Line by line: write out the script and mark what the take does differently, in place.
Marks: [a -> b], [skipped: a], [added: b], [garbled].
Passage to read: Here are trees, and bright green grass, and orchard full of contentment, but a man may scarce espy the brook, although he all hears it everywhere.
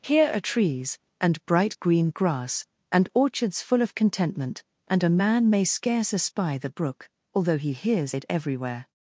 Here are trees, and bright green grass, and [orchard -> orchards] full of contentment, [but -> and] a man may scarce espy the brook, although he [skipped: all] hears it everywhere.